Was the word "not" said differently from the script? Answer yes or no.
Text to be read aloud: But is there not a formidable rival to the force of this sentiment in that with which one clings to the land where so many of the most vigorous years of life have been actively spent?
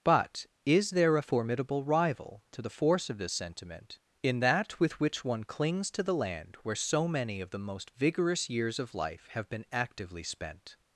yes